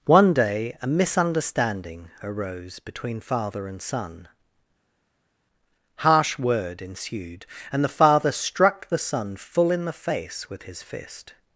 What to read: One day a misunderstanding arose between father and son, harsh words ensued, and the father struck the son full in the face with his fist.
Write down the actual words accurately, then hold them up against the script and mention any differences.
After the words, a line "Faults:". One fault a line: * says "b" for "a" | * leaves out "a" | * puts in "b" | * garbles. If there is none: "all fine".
One day a misunderstanding arose between father and son, harsh word ensued, and the father struck the son full in the face with his fist.
Faults:
* says "word" for "words"